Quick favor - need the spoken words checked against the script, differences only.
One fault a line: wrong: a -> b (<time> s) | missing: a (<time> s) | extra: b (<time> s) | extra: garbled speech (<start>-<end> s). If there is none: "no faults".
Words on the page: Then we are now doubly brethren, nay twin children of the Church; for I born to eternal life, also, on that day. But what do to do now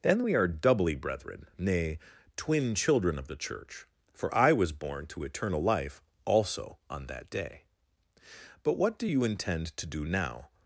missing: now (0.5 s)
extra: was (4.5 s)
extra: you intend (9.0 s)